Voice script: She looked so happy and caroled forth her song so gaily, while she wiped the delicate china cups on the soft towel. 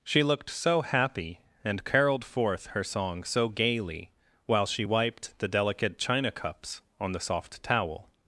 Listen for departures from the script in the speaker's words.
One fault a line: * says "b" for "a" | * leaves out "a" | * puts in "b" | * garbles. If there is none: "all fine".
all fine